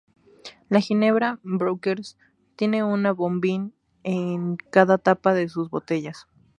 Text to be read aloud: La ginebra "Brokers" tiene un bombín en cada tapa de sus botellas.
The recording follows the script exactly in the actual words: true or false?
true